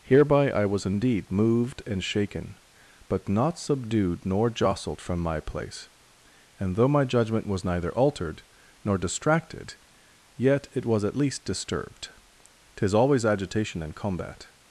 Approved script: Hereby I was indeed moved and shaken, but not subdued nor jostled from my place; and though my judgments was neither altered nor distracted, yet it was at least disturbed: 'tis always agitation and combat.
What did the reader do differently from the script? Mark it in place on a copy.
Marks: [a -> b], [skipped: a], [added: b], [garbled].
Hereby I was indeed moved and shaken, but not subdued nor jostled from my place; and though my [judgments -> judgment] was neither altered nor distracted, yet it was at least disturbed: 'tis always agitation and combat.